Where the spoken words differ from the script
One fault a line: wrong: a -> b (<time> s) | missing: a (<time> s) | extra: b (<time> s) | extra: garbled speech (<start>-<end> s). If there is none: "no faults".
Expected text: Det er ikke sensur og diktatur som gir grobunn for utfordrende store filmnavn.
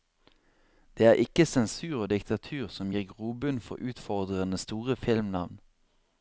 no faults